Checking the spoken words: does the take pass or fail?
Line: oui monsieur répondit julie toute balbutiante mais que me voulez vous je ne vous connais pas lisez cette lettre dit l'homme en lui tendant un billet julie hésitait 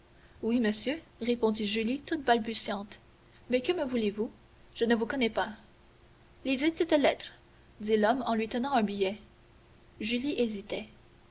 pass